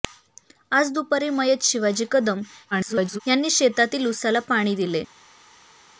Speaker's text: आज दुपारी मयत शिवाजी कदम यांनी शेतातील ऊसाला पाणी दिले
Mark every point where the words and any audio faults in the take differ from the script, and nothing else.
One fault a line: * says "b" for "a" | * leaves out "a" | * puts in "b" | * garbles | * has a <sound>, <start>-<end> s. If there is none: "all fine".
* garbles